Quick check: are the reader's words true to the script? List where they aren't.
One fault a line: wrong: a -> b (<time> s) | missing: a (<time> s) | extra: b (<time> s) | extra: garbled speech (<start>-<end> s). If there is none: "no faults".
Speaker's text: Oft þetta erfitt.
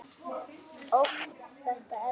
no faults